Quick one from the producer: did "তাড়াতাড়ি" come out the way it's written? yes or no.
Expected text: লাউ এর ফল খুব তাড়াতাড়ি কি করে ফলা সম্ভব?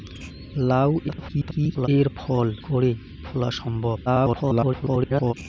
no